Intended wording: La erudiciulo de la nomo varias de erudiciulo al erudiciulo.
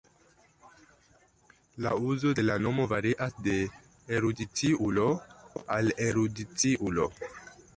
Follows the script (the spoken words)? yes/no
no